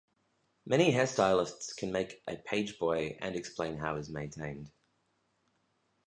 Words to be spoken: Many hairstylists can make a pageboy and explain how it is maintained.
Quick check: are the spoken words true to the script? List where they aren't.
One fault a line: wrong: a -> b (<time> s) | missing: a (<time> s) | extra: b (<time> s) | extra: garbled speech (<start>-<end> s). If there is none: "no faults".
no faults